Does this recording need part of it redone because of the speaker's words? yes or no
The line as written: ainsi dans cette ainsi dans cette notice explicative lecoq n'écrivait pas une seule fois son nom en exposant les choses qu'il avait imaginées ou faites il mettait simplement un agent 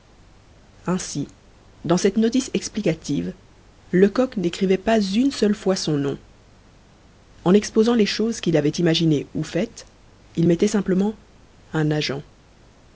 yes